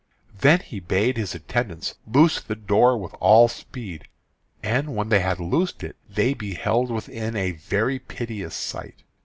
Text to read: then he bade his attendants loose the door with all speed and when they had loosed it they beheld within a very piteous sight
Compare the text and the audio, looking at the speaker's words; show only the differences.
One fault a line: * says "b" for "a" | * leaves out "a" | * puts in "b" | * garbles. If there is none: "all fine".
all fine